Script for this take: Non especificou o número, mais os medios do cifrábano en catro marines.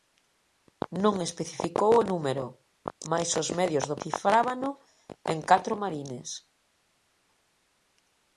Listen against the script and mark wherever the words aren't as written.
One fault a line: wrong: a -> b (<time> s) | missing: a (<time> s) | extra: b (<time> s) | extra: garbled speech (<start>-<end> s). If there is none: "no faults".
no faults